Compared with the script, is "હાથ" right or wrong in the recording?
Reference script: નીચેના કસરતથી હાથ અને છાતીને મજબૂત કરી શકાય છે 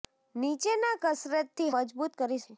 wrong